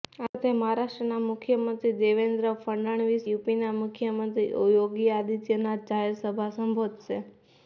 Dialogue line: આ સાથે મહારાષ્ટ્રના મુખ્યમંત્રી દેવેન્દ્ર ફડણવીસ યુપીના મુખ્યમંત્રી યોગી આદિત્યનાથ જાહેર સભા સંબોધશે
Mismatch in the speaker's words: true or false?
false